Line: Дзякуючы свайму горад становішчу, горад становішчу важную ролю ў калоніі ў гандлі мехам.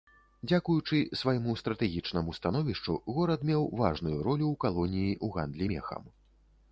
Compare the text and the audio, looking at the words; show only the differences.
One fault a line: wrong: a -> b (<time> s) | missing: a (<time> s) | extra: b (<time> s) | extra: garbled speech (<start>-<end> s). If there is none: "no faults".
wrong: горад -> стратэгічнаму (1.6 s)
wrong: становішчу -> меў (3.5 s)